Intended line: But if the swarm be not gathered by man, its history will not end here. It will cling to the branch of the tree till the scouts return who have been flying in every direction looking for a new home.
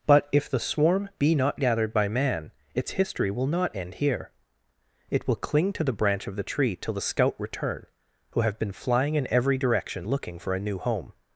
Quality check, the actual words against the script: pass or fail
fail